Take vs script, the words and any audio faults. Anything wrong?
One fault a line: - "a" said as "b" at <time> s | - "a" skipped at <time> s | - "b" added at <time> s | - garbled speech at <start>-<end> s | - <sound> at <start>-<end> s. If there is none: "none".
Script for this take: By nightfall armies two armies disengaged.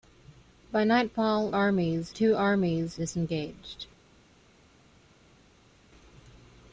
none